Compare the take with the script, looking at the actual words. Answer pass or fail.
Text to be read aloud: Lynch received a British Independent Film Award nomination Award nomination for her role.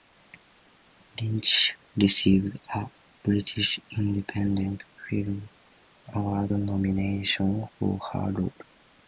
fail